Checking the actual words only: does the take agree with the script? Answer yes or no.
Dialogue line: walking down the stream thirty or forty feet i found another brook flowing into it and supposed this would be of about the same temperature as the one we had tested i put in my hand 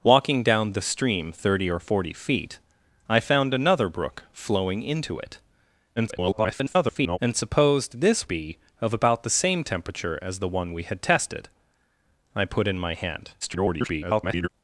no